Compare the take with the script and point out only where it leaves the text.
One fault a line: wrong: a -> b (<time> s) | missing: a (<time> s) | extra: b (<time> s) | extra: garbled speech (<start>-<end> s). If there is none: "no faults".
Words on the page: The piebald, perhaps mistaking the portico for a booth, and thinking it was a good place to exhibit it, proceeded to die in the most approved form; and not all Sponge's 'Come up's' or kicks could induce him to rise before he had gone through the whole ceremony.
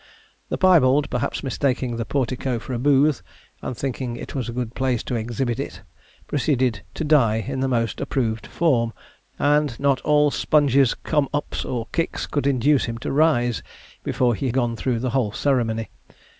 missing: had (14.5 s)